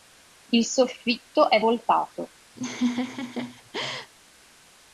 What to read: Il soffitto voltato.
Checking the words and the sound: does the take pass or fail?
fail